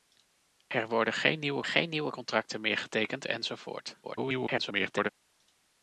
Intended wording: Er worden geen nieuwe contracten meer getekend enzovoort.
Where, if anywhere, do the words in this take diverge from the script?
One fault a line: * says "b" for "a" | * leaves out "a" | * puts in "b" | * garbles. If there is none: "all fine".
* puts in "geen nieuwe"
* garbles